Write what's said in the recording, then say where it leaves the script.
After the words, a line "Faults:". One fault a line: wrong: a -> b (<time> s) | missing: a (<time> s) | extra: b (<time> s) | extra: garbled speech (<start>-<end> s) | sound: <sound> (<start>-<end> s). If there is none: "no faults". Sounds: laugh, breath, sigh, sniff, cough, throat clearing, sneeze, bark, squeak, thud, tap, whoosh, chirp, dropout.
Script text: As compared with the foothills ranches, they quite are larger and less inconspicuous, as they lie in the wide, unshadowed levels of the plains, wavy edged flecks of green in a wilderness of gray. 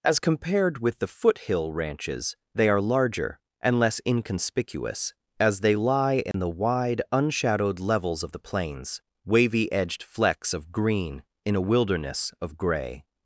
As compared with the foothill ranches, they are larger and less inconspicuous, as they lie in the wide, unshadowed levels of the plains, wavy edged flecks of green in a wilderness of gray.
Faults:
wrong: foothills -> foothill (1.1 s)
missing: quite (2.7 s)
sound: dropout (6.3-6.3 s)